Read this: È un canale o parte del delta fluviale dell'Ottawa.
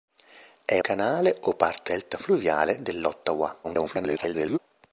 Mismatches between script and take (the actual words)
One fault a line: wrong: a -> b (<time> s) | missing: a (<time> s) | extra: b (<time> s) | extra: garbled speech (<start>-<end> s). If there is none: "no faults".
missing: un (0.8 s)
missing: del (1.9 s)
extra: garbled speech (3.6-4.6 s)